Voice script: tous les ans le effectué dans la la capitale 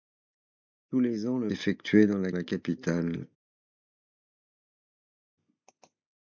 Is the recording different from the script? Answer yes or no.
no